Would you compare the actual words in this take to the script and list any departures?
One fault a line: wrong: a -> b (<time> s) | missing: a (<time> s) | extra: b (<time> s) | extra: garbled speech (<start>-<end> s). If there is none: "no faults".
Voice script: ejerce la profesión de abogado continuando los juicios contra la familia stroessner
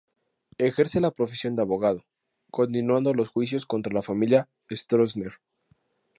no faults